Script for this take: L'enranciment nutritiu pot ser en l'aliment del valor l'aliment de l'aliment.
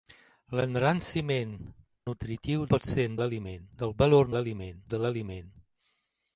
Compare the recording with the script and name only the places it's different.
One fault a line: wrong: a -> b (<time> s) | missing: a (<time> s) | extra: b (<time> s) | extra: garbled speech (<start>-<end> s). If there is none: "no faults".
no faults